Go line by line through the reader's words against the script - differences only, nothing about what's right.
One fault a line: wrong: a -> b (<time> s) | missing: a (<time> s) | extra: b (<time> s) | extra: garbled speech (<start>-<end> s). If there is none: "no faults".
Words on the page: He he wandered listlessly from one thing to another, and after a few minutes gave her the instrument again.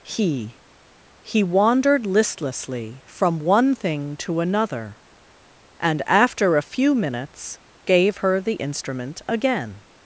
no faults